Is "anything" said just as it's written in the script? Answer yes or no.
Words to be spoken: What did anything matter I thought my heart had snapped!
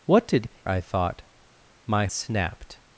no